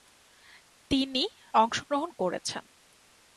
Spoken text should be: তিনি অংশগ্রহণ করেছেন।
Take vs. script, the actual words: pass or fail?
pass